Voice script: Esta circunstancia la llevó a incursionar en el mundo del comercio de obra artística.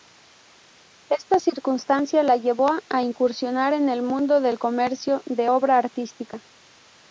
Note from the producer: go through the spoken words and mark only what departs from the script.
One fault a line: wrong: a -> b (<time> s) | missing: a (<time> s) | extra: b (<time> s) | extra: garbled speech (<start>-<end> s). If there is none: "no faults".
no faults